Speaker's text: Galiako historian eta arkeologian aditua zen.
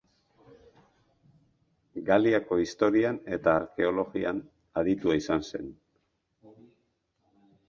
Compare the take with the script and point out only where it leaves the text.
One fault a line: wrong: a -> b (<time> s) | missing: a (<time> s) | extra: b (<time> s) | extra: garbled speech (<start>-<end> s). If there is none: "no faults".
extra: izan (5.2 s)